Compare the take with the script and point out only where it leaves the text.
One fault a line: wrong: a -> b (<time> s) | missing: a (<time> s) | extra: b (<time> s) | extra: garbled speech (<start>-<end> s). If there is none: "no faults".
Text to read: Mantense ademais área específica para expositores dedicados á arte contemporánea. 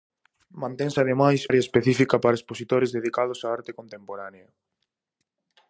no faults